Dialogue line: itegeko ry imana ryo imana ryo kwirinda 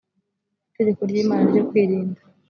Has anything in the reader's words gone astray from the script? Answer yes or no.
yes